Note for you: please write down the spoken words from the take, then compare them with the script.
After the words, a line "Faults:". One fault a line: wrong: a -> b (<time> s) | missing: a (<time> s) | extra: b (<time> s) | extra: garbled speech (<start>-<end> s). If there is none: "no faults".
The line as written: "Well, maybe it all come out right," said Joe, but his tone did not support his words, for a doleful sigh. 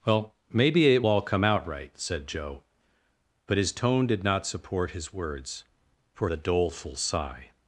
"Well, maybe it all come out right," said Joe, but his tone did not support his words, for a doleful sigh.
Faults:
no faults